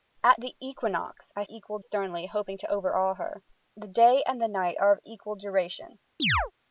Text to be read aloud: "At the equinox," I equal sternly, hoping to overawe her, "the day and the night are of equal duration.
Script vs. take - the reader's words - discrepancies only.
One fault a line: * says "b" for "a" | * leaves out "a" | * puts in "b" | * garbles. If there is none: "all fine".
all fine